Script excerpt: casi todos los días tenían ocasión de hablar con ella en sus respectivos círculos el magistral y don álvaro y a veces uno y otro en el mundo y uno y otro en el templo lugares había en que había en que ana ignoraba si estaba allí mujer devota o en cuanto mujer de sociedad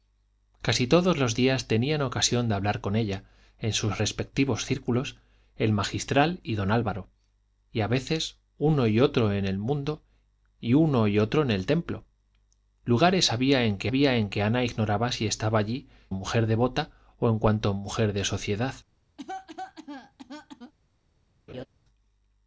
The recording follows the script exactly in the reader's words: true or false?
true